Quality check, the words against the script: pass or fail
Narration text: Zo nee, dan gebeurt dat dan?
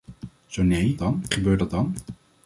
pass